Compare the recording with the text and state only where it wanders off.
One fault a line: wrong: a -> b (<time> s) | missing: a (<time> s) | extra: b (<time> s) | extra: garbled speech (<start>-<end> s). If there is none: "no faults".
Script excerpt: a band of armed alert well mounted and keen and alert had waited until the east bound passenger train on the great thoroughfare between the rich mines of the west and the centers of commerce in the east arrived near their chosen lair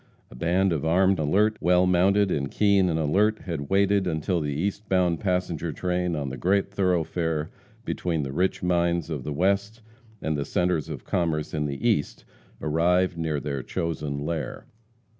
no faults